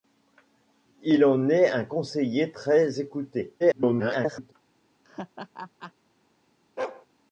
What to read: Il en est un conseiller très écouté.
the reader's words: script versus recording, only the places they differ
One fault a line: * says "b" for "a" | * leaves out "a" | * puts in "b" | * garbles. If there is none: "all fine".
* garbles